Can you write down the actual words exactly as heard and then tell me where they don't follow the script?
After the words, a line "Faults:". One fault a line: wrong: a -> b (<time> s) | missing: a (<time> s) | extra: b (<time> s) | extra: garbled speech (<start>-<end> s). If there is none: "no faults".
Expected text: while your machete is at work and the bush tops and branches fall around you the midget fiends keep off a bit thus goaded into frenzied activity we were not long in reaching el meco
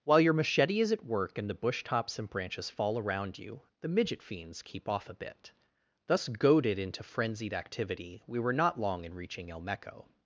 while your machete is at work and the bush tops and branches fall around you the midget fiends keep off a bit thus goaded into frenzied activity we were not long in reaching el meco
Faults:
no faults